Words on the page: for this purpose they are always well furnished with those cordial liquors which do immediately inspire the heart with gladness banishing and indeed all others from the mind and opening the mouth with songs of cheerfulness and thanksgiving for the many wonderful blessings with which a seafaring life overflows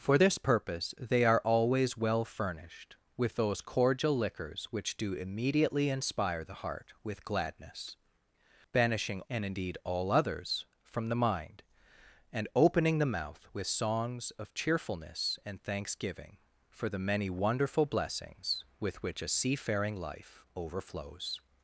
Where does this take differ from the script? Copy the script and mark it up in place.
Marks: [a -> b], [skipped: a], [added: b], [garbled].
for this purpose they are always well furnished with those cordial liquors which do immediately inspire the heart with gladness banishing and indeed all others from the mind and opening the mouth with songs of cheerfulness and thanksgiving for the many wonderful blessings with which a seafaring life overflows